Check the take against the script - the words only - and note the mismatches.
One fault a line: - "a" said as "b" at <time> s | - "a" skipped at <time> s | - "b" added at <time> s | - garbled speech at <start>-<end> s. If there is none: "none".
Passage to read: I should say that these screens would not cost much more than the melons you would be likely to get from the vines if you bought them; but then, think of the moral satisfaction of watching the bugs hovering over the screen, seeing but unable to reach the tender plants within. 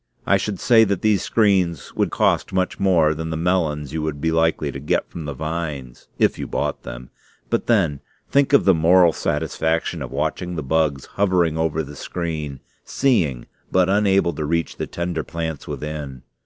- "not" skipped at 2.1 s